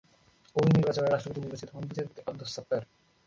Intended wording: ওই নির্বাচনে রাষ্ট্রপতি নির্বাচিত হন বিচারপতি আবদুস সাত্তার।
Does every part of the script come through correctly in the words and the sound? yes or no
yes